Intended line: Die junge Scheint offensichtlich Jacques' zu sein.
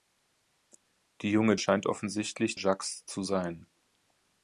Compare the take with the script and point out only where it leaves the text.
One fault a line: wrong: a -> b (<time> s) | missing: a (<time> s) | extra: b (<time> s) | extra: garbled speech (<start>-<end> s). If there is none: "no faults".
no faults